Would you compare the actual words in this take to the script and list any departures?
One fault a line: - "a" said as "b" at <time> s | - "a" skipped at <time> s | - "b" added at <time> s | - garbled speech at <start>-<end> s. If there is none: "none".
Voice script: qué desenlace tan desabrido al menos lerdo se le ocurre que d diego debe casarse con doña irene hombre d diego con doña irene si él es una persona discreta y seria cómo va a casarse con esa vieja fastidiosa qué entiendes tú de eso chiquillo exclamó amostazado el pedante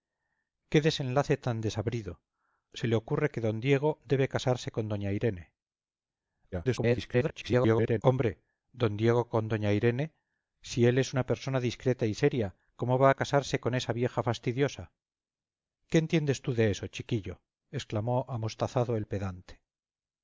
- "al menos lerdo" skipped at 2.2 s
- garbled speech at 6.5-8.0 s